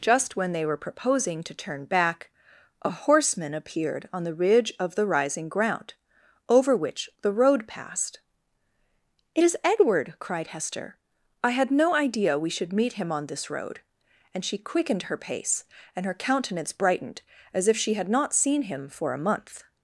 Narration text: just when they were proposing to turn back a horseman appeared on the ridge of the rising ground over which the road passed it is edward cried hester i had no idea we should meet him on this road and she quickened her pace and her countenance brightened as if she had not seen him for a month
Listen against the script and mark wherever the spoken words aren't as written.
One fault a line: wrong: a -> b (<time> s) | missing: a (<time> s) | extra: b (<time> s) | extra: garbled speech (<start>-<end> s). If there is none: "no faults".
no faults